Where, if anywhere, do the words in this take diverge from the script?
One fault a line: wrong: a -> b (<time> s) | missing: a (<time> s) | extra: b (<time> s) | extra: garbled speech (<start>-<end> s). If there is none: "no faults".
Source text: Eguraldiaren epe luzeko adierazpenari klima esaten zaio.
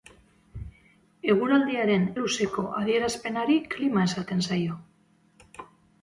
missing: epe (2.1 s)